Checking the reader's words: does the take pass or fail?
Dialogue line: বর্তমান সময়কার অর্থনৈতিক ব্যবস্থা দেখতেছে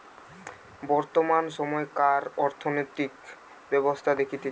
pass